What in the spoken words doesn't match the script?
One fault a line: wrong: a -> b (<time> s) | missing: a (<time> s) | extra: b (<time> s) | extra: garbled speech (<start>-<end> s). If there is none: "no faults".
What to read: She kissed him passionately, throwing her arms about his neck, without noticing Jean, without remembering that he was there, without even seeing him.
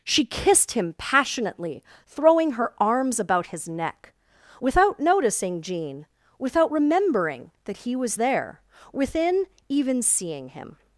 wrong: without -> within (8.9 s)